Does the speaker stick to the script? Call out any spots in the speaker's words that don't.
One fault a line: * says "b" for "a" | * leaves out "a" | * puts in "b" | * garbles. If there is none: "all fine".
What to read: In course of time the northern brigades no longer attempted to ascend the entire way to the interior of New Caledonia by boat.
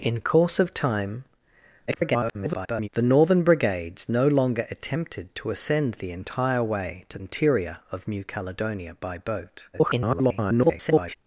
* garbles
* leaves out "the"
* garbles